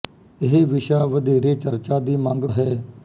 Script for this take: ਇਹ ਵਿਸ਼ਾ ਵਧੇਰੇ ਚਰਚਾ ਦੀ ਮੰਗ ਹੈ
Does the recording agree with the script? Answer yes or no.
yes